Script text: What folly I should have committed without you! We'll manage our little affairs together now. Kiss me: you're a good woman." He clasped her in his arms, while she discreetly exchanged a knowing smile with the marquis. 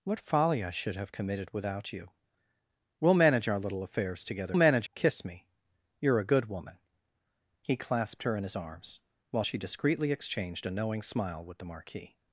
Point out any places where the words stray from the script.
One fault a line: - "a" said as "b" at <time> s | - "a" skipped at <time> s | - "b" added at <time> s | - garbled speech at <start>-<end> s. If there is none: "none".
- "now" said as "manage" at 4.5 s